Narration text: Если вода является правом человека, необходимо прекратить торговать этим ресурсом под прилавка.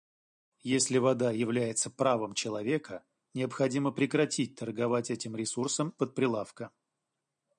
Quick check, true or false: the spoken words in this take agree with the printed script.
true